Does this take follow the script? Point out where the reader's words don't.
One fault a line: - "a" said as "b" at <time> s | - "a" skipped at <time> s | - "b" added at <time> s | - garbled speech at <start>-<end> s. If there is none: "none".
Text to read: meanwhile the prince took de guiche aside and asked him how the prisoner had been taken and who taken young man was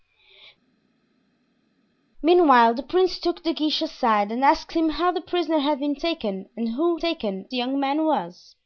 none